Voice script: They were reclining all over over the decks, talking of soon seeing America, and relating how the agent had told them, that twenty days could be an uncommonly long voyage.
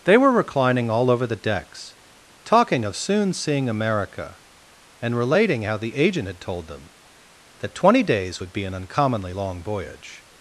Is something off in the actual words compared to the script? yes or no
yes